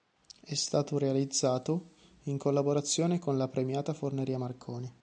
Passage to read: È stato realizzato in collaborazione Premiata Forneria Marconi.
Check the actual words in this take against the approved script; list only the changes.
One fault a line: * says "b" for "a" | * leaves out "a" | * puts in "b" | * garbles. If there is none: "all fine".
* puts in "con la"